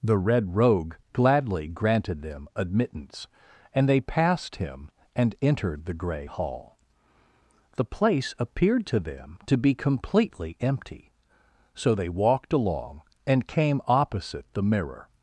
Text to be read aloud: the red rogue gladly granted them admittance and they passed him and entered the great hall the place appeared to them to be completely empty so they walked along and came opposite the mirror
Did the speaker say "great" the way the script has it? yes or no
no